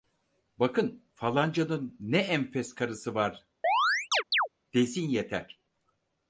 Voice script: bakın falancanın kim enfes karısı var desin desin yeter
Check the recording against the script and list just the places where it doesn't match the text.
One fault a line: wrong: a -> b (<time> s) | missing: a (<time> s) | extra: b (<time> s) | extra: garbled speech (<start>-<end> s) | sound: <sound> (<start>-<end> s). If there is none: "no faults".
wrong: kim -> ne (2.0 s)
sound: chirp (3.6-4.5 s)
missing: desin (5.1 s)